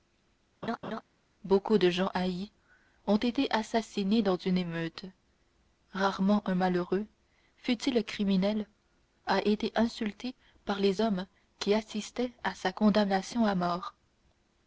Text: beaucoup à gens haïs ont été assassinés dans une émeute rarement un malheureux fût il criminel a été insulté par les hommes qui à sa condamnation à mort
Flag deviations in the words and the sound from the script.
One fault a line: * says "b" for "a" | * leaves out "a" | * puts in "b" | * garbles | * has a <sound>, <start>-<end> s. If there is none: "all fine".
* has a laugh, 0.6-1.0 s
* says "de" for "à"
* puts in "assistaient"